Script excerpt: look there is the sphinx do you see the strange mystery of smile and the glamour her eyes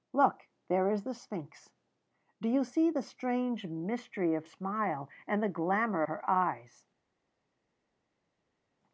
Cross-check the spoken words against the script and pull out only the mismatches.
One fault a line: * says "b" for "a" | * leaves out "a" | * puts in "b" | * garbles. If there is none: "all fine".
all fine